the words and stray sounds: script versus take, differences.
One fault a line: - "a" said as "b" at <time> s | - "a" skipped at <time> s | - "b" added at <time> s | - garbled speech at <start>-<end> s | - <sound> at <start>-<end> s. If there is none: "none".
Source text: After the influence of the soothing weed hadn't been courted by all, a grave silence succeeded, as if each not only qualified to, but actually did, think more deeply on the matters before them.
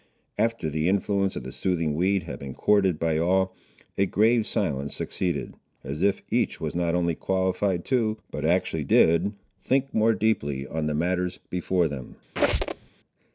- "hadn't" said as "had" at 2.2 s
- "was" added at 6.6 s
- squeak at 12.4-12.9 s